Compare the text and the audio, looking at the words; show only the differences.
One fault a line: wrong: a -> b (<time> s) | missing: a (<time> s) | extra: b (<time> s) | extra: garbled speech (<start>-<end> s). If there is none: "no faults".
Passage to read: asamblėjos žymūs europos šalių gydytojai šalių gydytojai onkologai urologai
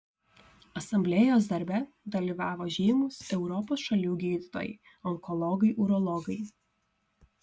extra: darbe dalyvavo (1.5 s)
missing: šalių gydytojai (4.7 s)